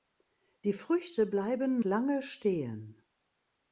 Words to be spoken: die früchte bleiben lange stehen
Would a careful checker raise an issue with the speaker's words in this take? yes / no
no